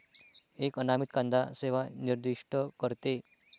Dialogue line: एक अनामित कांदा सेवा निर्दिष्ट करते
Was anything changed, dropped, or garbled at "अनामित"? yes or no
no